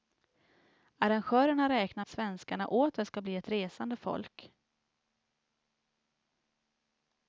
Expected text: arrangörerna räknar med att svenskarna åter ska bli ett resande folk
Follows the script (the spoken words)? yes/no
no